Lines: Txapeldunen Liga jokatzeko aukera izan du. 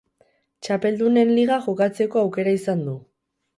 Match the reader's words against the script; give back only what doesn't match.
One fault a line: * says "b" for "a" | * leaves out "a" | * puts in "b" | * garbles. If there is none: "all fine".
all fine